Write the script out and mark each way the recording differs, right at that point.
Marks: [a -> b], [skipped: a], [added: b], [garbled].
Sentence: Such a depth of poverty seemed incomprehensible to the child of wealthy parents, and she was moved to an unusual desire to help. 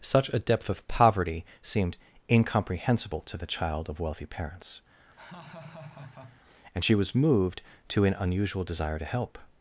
Such a depth of poverty seemed incomprehensible to the child of wealthy parents, and she was moved to an unusual desire to help.